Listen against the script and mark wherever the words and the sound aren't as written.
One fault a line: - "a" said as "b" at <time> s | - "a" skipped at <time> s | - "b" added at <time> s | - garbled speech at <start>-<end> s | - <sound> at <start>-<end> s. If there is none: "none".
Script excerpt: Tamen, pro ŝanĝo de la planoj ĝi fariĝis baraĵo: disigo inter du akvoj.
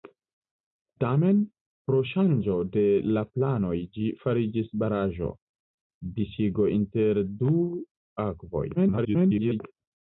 - garbled speech at 8.7-9.6 s